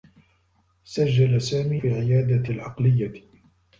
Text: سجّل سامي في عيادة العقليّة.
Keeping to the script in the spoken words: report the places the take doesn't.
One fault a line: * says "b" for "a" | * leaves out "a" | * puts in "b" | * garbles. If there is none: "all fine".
all fine